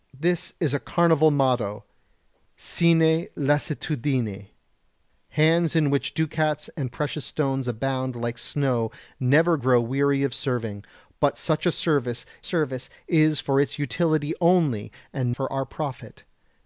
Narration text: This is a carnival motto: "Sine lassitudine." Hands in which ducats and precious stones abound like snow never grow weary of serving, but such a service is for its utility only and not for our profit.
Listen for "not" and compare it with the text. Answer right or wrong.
wrong